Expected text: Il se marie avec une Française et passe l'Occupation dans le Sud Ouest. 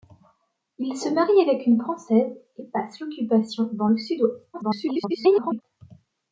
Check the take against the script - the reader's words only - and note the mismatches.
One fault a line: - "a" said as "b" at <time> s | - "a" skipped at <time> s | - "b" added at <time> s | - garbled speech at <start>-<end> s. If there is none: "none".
- garbled speech at 4.5-5.6 s